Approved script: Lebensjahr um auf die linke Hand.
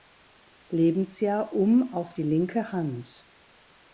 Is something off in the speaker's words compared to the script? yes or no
no